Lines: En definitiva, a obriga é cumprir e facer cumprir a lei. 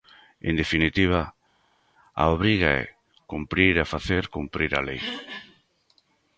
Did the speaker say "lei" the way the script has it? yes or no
yes